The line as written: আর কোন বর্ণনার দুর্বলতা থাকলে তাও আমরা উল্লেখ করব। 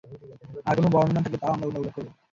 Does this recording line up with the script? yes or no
no